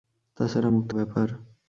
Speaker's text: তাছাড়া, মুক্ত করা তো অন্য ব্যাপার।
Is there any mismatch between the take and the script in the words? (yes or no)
yes